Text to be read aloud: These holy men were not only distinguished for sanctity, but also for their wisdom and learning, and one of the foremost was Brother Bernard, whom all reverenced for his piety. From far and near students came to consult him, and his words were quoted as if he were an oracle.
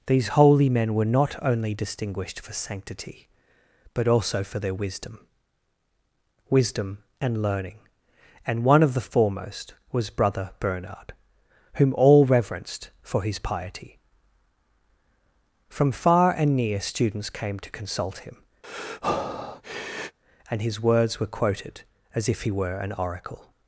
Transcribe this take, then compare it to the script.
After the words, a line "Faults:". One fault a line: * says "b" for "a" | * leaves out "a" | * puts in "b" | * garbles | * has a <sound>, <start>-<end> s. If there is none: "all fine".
These holy men were not only distinguished for sanctity, but also for their wisdom wisdom and learning, and one of the foremost was Brother Bernard, whom all reverenced for his piety. From far and near students came to consult him, and his words were quoted as if he were an oracle.
Faults:
* puts in "wisdom"
* has a breath, 18.6-20.2 s